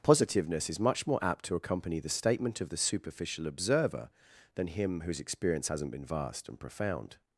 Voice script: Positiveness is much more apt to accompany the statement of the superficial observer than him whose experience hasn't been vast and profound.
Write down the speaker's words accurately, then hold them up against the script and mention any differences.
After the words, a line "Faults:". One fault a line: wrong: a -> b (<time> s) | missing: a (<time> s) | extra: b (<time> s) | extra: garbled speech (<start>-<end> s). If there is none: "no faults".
Positiveness is much more apt to accompany the statement of the superficial observer than him whose experience hasn't been vast and profound.
Faults:
no faults